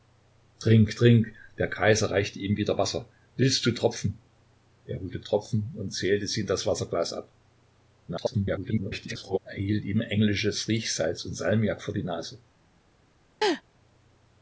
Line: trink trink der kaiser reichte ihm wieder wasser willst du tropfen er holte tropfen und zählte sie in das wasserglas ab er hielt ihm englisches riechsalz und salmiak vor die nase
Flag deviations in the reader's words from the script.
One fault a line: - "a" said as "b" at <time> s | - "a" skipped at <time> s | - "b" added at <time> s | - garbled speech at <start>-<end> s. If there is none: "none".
- garbled speech at 8.1-9.4 s